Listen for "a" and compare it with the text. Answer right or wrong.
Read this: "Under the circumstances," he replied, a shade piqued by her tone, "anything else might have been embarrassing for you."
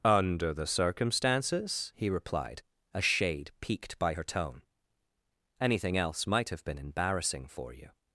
right